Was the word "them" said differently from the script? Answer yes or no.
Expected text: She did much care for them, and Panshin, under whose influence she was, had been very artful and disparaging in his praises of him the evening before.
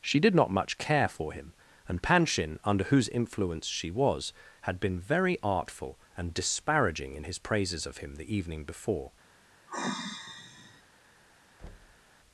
yes